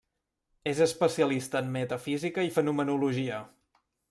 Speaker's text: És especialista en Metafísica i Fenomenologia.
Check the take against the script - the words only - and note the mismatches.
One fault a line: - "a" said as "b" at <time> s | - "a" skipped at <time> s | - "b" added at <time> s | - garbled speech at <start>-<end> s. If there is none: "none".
none